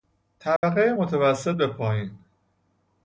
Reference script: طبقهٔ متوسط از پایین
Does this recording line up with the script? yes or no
no